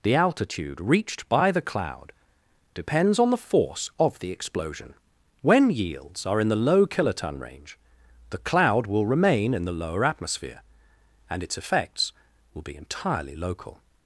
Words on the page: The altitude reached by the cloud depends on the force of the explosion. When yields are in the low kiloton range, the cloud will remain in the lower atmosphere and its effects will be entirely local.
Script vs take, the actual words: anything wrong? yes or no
no